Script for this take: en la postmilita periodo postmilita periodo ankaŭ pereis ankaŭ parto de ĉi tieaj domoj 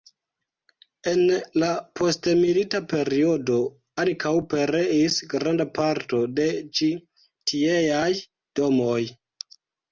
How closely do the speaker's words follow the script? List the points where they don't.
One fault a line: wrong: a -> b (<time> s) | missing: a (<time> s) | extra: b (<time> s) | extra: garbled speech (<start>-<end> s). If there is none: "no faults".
missing: postmilita periodo (3.6 s)
wrong: ankaŭ -> granda (5.3 s)